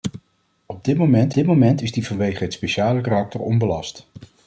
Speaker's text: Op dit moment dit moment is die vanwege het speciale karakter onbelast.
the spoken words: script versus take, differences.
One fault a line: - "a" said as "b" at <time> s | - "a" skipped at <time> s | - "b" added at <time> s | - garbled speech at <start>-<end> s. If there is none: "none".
none